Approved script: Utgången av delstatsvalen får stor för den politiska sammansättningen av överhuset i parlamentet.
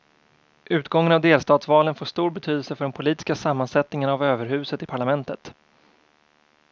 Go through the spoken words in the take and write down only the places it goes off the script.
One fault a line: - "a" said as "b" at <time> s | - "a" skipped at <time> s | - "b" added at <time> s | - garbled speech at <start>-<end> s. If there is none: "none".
- "betydelse" added at 2.3 s